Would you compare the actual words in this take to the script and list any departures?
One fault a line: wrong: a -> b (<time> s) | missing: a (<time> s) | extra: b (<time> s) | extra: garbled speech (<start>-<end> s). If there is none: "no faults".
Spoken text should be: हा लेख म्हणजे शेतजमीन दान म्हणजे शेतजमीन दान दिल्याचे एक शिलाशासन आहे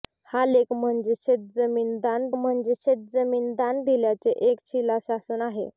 no faults